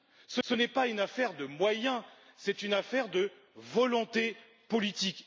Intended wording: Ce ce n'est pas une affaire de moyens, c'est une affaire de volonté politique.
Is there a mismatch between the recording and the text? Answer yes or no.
no